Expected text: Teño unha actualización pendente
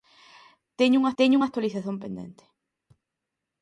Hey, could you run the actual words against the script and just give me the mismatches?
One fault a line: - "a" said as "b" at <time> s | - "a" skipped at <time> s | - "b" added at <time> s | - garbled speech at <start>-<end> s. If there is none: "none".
- "teño unha" added at 1.2 s